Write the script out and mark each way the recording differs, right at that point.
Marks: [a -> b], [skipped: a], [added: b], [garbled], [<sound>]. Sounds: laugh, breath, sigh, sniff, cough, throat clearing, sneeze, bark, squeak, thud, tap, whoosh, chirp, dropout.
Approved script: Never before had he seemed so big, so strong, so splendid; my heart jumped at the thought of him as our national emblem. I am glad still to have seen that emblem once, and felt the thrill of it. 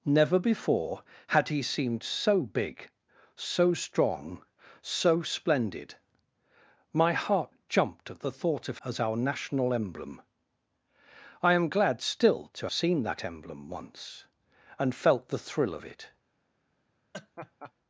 Never before had he seemed so big, so strong, so splendid; my heart jumped at the thought of [skipped: him] as our national emblem. I am glad still to [skipped: have] seen that emblem once, and felt the thrill of it. [laugh]